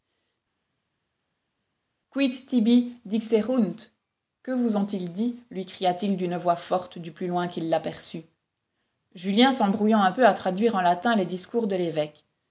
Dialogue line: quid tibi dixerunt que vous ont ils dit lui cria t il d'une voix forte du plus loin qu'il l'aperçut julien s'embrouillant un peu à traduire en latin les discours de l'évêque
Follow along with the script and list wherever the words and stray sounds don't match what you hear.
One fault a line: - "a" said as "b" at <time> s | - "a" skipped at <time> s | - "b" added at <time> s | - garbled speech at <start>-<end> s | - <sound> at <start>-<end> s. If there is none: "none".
none